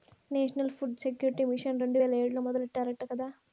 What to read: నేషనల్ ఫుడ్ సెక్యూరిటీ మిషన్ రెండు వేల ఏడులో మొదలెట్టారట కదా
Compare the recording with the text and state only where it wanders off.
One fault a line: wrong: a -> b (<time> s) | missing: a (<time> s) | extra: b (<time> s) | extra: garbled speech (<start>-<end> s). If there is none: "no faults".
no faults